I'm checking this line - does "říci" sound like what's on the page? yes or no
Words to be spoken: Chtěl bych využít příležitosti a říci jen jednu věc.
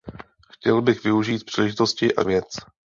no